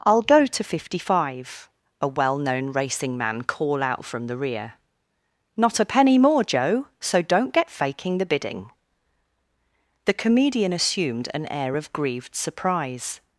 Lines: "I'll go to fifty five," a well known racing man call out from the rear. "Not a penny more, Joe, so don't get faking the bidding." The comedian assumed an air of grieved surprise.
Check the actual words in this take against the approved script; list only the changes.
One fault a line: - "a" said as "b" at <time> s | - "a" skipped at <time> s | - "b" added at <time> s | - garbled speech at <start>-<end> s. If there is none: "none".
none